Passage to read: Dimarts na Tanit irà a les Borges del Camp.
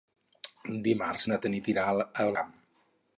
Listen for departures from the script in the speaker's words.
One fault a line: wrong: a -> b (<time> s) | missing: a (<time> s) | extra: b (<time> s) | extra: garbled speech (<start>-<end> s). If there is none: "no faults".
missing: les Borges del (2.3 s)